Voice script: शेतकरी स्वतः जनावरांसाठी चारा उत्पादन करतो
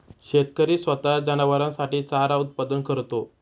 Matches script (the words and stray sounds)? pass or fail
pass